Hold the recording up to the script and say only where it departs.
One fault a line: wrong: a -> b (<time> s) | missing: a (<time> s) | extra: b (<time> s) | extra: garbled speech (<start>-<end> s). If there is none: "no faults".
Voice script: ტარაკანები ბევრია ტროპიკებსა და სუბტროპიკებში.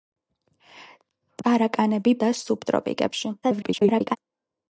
missing: ბევრია ტროპიკებსა (2.1 s)
extra: garbled speech (3.4-4.2 s)